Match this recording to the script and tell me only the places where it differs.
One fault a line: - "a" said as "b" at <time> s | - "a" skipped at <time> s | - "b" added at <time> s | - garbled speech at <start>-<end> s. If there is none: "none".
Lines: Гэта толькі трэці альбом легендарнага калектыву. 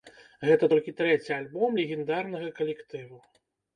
none